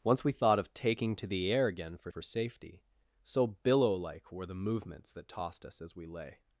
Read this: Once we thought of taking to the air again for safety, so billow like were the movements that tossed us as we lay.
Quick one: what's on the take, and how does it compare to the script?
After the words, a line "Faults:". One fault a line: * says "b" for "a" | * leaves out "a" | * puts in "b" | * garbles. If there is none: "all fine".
Once we thought of taking to the air again for for safety, so billow like were the movements that tossed us as we lay.
Faults:
* puts in "for"